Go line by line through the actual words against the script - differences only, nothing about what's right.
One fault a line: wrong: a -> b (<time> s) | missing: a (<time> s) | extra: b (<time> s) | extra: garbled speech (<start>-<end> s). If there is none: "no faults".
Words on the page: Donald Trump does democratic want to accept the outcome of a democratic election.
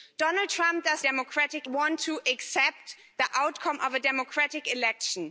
no faults